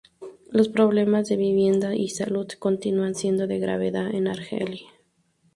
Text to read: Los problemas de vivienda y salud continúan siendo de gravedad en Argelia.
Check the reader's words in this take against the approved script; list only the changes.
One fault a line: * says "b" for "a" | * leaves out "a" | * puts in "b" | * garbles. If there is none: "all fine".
all fine